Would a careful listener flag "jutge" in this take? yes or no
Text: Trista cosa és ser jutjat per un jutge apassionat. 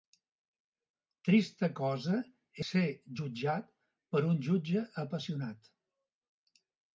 no